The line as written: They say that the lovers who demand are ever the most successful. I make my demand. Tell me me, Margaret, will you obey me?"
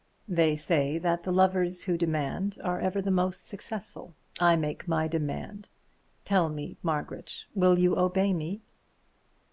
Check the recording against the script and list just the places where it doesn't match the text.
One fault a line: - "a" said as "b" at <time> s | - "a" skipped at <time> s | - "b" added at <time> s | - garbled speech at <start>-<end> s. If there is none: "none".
- "me" skipped at 6.8 s